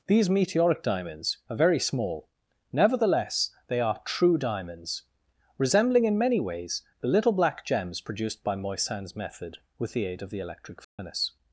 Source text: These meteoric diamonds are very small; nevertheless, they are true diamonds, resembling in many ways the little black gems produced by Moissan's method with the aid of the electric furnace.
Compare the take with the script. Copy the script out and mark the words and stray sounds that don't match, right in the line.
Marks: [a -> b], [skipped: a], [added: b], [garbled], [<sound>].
These meteoric diamonds are very small; nevertheless, they are true diamonds, resembling in many ways the little black gems produced by Moissan's method with the aid of the electric furnace. [dropout]